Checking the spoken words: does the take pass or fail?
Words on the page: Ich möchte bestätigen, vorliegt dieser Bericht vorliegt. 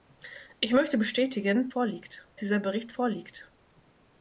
pass